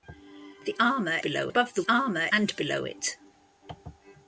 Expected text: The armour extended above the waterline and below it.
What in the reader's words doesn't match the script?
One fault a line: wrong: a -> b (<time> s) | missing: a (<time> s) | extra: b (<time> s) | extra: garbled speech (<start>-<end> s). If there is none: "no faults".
wrong: extended -> below (1.2 s)
wrong: waterline -> armour (1.9 s)